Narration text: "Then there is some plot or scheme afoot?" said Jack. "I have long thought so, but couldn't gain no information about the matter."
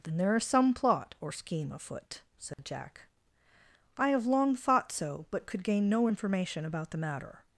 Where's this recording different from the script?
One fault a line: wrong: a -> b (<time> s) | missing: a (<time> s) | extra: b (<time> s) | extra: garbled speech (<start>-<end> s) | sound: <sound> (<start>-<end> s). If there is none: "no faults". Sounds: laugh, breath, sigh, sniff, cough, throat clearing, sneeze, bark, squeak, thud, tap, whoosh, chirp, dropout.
sound: dropout (2.5-2.6 s)
wrong: couldn't -> could (5.5 s)